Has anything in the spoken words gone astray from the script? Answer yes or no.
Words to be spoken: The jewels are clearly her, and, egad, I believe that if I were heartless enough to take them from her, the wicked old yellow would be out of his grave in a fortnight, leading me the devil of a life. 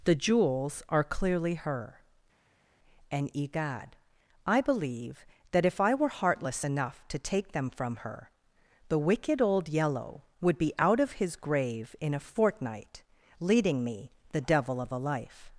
no